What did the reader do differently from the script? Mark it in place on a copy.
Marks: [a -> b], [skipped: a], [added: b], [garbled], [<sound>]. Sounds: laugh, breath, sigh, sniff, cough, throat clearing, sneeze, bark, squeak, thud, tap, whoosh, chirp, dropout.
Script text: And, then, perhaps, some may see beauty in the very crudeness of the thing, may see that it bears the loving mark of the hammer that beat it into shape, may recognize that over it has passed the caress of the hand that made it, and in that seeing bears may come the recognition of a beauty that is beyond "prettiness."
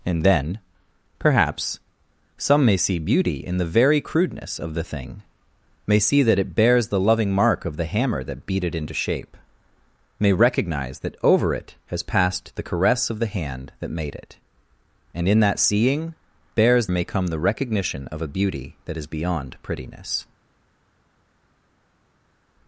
And, then, perhaps, some may see beauty in the very crudeness of the thing, may see that it bears the loving mark of the hammer that beat it into shape, may recognize that over it has passed the caress of the hand that made it, and in that seeing bears may come the recognition of a beauty that is beyond "prettiness."